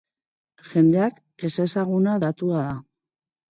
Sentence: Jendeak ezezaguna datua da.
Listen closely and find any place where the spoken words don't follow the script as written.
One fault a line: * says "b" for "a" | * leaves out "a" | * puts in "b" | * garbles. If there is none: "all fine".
all fine